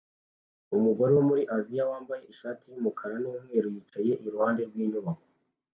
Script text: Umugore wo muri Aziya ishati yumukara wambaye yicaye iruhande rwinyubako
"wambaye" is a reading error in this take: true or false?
true